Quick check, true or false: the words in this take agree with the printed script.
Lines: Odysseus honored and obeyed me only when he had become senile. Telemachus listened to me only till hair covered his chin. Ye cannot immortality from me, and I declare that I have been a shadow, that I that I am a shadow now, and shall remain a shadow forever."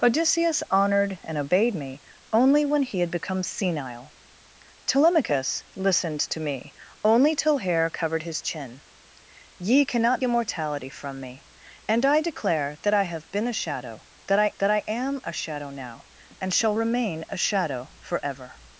true